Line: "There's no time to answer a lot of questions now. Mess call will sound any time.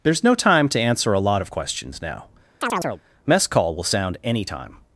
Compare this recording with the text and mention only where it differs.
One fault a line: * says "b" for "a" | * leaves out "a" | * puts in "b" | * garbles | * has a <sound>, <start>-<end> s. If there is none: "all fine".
* has a chirp, 2.6-3.0 s